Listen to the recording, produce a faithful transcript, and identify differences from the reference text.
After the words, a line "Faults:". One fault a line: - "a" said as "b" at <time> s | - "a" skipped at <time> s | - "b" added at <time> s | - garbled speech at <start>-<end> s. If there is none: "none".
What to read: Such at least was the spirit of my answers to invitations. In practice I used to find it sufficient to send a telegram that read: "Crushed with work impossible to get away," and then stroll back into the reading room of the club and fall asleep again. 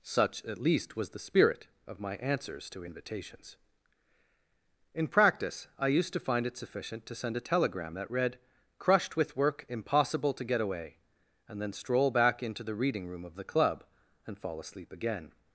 Such at least was the spirit of my answers to invitations. In practice I used to find it sufficient to send a telegram that read: "Crushed with work impossible to get away," and then stroll back into the reading room of the club and fall asleep again.
Faults:
none